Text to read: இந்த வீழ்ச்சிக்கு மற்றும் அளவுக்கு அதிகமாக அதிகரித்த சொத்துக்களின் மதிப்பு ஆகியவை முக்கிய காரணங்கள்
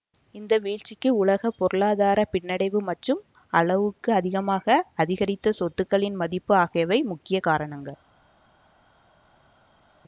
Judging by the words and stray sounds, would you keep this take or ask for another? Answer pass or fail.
fail